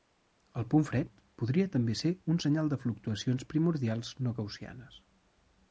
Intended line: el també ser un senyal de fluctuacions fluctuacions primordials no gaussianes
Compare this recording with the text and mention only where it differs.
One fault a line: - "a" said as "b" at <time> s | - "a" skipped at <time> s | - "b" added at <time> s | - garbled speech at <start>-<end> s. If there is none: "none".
- "punt fred podria" added at 0.7 s
- "fluctuacions" skipped at 3.5 s